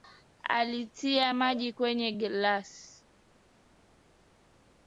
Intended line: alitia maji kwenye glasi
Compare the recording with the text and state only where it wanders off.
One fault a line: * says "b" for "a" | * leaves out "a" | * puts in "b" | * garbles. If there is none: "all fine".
all fine